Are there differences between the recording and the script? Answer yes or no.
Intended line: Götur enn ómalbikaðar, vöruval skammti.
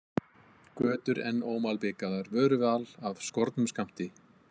yes